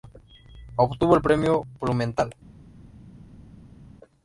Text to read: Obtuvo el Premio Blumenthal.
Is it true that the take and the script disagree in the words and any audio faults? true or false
false